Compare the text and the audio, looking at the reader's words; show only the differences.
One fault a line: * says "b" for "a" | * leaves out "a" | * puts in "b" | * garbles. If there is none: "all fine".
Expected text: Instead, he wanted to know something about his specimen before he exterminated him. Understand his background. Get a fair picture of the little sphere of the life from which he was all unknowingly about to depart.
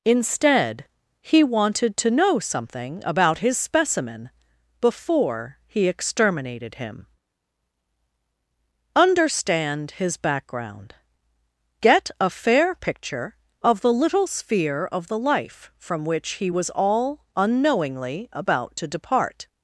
all fine